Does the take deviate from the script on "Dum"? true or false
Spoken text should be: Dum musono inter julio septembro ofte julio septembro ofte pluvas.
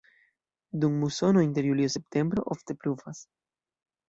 false